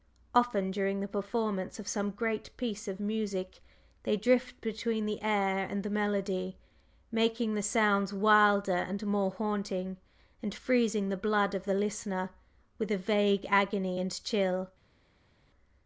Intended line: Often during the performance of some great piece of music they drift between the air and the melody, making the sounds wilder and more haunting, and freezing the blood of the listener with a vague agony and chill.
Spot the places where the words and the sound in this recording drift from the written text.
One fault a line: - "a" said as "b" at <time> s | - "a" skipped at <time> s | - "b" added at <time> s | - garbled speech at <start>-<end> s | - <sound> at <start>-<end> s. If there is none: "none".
none